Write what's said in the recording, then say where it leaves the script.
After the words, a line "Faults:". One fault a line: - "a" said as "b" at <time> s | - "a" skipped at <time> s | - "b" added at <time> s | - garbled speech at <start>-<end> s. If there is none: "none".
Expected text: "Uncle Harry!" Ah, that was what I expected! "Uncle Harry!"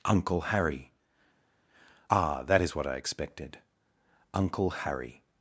"Uncle Harry!" Ah, that is what I expected! "Uncle Harry!"
Faults:
- "was" said as "is" at 2.6 s